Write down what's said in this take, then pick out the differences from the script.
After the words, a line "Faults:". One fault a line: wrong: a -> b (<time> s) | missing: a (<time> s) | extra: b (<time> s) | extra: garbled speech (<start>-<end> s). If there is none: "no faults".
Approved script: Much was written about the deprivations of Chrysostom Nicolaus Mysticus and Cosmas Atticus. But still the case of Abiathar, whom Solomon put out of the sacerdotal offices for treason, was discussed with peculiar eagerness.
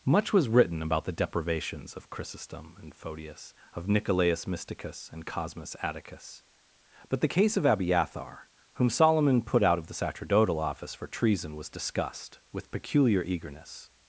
Much was written about the deprivations of Chrysostom and Photius, of Nicolaus Mysticus and Cosmas Atticus. But the case of Abiathar, whom Solomon put out of the sacerdotal office for treason, was discussed with peculiar eagerness.
Faults:
extra: and Photius of (2.8 s)
missing: still (7.2 s)
wrong: offices -> office (10.6 s)